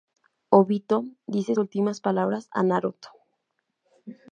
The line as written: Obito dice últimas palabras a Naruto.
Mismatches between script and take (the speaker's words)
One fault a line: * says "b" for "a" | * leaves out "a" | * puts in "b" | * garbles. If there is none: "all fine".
all fine